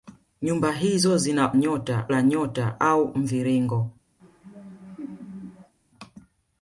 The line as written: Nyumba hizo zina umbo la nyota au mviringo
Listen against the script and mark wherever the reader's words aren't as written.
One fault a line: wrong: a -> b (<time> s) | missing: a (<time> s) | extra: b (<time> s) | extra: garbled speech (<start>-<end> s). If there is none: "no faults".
wrong: umbo -> nyota (1.5 s)